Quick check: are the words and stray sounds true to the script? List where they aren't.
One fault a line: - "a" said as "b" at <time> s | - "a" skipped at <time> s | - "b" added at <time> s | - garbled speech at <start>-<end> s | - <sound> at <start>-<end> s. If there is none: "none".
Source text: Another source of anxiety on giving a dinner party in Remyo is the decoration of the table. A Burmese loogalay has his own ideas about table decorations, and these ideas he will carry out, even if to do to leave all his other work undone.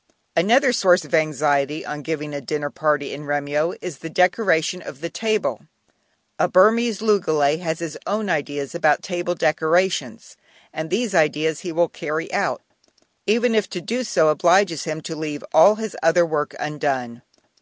- "so obliges him" added at 14.0 s